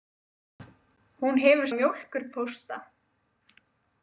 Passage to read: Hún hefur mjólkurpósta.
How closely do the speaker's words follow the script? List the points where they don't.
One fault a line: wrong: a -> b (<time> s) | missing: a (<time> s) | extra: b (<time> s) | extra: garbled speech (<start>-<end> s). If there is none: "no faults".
no faults